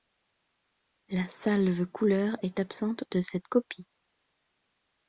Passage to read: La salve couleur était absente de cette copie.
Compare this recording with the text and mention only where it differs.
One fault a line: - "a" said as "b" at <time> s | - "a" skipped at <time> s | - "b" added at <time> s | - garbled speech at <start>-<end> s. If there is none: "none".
- "était" said as "est" at 2.4 s